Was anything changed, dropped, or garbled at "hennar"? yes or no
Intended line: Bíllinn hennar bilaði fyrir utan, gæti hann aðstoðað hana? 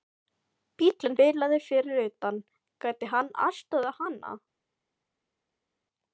yes